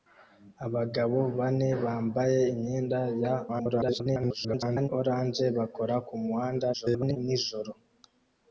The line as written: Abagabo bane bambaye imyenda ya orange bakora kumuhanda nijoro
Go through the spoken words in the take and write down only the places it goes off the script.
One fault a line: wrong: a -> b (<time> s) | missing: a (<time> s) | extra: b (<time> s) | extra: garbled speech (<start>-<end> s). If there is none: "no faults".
extra: garbled speech (3.5-4.9 s)
extra: garbled speech (6.7-7.2 s)